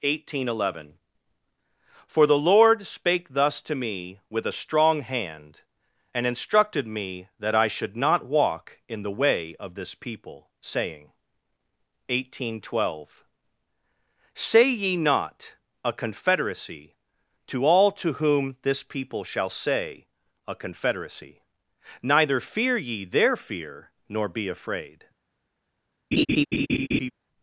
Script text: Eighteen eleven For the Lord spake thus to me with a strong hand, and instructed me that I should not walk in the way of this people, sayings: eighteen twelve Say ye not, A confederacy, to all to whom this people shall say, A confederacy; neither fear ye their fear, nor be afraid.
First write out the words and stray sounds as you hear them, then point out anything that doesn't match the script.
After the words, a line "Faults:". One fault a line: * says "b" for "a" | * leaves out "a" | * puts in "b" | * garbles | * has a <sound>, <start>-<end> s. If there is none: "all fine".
Eighteen eleven For the Lord spake thus to me with a strong hand, and instructed me that I should not walk in the way of this people, saying: eighteen twelve Say ye not, A confederacy, to all to whom this people shall say, A confederacy; neither fear ye their fear, nor be afraid.
Faults:
* says "saying" for "sayings"
* has a laugh, 26.1-27.1 s